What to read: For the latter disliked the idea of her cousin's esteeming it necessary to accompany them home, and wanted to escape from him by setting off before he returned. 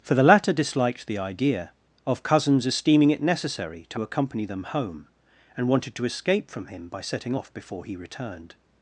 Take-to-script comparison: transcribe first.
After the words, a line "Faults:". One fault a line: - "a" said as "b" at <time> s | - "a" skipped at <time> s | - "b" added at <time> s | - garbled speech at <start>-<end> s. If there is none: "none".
For the latter disliked the idea of cousin's esteeming it necessary to accompany them home, and wanted to escape from him by setting off before he returned.
Faults:
- "her" skipped at 2.2 s